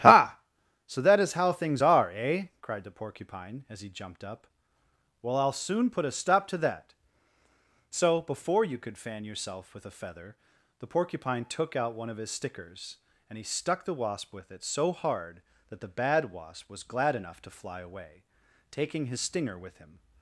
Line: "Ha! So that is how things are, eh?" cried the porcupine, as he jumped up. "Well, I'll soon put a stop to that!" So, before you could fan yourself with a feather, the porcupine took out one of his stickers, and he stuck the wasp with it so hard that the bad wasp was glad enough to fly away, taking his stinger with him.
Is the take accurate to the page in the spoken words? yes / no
yes